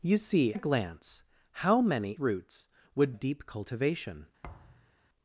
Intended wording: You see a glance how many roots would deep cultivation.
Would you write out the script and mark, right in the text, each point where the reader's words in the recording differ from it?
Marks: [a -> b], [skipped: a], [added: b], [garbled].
You see a glance how many roots would deep cultivation.